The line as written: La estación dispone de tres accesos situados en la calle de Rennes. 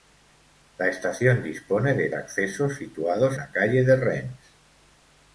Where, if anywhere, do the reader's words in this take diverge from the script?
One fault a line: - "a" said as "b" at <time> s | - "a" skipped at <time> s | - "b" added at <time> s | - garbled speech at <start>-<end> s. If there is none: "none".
- "tres" skipped at 2.1 s
- "en" skipped at 3.4 s